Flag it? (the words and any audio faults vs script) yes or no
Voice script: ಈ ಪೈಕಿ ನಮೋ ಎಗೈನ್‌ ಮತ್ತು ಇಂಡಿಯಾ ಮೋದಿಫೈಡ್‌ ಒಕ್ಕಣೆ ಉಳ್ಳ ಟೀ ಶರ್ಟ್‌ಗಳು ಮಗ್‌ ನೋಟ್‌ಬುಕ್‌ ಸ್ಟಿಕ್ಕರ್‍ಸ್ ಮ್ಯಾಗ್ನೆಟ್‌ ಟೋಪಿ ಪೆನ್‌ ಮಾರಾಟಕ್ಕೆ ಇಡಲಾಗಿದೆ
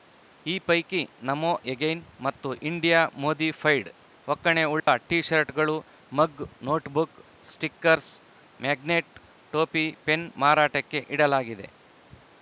yes